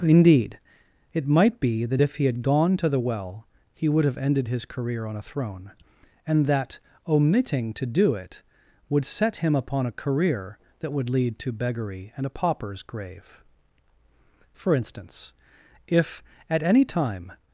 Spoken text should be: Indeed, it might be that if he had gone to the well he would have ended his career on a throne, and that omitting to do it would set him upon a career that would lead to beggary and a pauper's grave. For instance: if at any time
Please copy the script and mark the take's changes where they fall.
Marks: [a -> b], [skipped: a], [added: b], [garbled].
Indeed, it might be that if he had gone to the well he would have ended his career on a throne, and that omitting to do it would set him upon a career that would lead to beggary and a pauper's grave. For instance: if at any time